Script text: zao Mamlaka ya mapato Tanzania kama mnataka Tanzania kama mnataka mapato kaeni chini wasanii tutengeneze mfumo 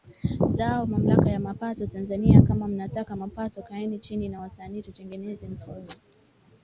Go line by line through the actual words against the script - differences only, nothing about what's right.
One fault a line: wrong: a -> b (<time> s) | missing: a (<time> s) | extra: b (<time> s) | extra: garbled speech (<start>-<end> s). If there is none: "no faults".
missing: Tanzania kama mnataka (3.1 s)
extra: na (4.3 s)